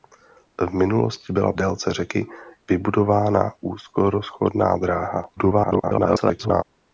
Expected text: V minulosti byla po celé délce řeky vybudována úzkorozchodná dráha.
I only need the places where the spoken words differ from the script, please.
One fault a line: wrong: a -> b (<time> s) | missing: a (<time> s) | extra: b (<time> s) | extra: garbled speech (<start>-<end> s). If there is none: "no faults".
missing: po celé (1.5 s)
extra: garbled speech (5.4-6.6 s)